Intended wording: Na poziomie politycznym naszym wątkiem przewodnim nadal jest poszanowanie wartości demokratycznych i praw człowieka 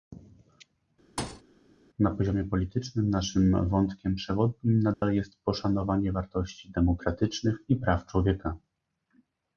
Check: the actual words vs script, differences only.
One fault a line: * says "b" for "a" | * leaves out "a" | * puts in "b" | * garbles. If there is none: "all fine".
all fine